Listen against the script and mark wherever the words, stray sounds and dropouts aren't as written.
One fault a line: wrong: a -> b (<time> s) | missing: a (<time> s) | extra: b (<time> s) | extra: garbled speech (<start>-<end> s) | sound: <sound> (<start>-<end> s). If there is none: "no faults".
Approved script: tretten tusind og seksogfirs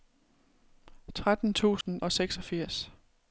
sound: dropout (1.8-1.9 s)